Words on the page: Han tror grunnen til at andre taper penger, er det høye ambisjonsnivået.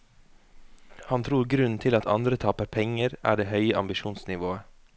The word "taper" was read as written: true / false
true